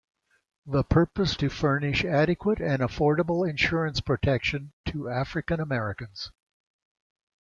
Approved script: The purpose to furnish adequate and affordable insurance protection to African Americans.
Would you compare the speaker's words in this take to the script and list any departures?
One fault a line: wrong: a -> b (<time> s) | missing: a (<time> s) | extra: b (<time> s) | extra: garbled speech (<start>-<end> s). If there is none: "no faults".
no faults